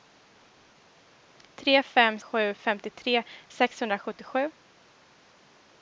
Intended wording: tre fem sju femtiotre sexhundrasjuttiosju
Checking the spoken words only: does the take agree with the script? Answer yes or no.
yes